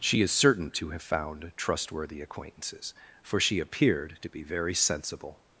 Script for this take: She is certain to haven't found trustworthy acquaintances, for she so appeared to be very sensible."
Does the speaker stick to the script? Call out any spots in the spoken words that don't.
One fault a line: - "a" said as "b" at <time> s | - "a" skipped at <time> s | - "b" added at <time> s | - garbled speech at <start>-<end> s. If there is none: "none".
- "haven't" said as "have" at 0.9 s
- "so" skipped at 3.6 s